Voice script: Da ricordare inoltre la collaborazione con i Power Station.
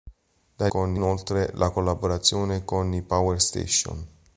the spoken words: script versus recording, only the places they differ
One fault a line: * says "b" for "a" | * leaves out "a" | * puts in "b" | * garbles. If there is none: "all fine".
* says "con" for "ricordare"